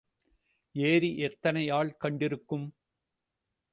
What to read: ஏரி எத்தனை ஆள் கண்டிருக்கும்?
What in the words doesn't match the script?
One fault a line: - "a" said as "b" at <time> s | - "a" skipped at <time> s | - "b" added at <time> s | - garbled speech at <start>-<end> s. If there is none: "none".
none